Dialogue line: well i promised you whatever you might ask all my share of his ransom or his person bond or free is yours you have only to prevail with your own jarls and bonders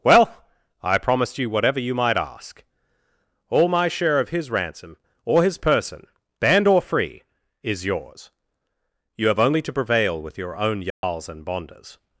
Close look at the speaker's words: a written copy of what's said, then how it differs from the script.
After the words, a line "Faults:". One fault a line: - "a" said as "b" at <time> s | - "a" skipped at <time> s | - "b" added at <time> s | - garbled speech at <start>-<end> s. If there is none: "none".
well i promised you whatever you might ask all my share of his ransom or his person band or free is yours you have only to prevail with your own jarls and bonders
Faults:
- "bond" said as "band" at 6.4 s